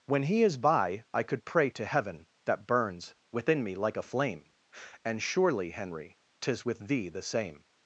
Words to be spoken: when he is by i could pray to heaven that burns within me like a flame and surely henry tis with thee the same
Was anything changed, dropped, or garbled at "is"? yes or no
no